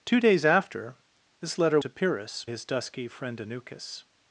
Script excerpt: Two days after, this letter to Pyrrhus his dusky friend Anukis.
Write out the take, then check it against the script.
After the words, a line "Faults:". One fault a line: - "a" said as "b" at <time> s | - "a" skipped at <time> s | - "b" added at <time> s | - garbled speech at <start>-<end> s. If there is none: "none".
Two days after, this letter to Pyrrhus his dusky friend Anukis.
Faults:
none